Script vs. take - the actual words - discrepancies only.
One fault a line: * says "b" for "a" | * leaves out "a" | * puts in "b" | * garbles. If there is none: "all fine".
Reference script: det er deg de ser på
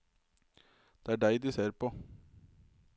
all fine